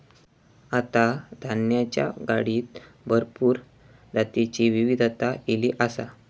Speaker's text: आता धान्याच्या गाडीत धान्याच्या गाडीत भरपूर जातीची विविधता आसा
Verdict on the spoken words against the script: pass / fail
fail